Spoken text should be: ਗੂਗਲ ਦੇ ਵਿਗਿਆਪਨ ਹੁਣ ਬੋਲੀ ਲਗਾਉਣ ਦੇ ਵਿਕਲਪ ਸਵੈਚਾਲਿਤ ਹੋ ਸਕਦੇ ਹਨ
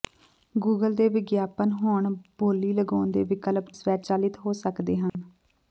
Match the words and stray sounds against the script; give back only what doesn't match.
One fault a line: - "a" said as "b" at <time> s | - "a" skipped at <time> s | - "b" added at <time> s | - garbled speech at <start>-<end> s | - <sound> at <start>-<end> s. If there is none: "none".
- dropout at 5.1-5.1 s